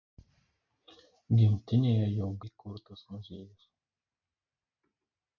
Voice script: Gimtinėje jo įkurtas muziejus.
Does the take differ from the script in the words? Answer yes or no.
no